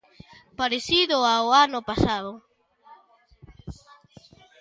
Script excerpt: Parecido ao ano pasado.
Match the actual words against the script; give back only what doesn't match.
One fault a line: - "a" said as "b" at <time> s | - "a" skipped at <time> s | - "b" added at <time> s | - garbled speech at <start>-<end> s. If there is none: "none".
none